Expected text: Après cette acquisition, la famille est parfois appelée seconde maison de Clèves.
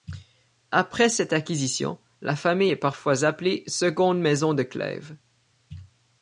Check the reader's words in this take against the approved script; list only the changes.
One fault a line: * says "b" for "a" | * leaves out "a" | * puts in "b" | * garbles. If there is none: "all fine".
all fine